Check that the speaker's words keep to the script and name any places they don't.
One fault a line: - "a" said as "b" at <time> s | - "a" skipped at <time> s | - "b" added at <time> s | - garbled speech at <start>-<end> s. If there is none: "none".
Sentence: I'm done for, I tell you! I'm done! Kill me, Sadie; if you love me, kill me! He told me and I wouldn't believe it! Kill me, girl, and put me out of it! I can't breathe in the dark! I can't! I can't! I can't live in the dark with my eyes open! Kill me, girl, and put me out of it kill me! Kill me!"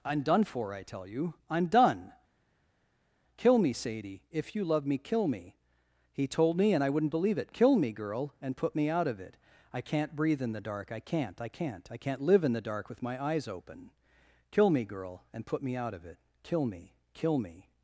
none